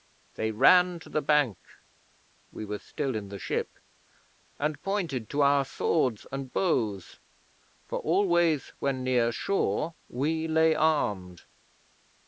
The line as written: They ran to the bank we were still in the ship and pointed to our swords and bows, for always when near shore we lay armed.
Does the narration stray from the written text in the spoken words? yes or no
no